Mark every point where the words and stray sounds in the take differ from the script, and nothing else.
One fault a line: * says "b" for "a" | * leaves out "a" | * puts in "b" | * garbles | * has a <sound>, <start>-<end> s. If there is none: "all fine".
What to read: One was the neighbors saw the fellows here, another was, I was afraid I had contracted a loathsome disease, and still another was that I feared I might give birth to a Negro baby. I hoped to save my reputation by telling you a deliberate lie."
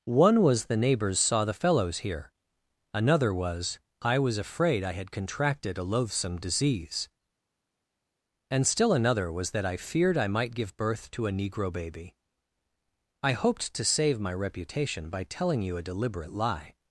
all fine